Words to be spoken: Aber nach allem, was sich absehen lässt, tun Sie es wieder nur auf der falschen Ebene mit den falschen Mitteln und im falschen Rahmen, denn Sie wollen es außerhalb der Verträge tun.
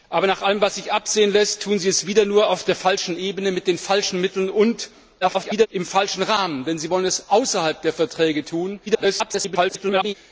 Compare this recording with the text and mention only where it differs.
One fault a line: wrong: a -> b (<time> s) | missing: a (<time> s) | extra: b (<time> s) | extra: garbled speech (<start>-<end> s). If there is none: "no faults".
extra: garbled speech (5.2-5.7 s)
extra: garbled speech (8.9-10.1 s)